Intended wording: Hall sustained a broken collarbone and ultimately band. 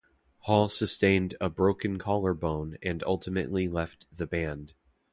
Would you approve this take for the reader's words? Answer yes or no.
no